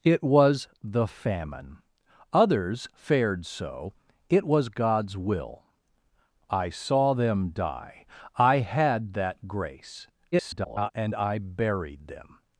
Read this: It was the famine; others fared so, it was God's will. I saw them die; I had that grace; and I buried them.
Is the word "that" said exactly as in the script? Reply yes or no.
yes